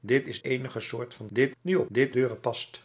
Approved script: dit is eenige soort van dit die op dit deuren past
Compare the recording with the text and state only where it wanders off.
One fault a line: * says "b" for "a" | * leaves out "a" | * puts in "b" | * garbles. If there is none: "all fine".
all fine